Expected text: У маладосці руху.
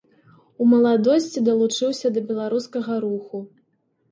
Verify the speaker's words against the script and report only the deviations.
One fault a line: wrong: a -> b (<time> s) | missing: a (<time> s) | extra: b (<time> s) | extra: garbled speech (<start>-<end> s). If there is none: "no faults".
extra: далучыўся да беларускага (1.5 s)